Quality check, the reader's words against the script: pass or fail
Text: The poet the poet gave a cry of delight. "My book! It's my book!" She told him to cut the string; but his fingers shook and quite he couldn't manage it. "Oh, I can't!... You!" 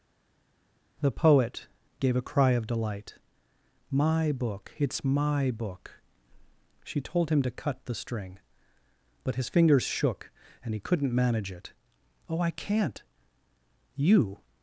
fail